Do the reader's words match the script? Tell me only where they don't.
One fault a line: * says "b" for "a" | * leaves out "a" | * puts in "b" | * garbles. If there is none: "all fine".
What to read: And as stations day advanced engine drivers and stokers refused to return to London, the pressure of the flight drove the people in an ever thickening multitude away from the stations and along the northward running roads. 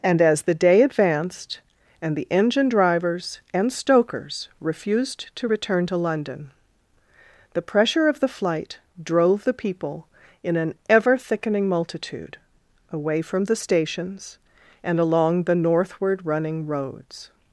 * says "the" for "stations"
* puts in "and the"